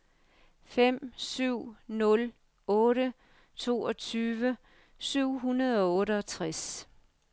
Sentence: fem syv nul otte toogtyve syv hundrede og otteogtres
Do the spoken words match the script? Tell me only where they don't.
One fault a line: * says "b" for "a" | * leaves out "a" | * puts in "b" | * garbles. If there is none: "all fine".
all fine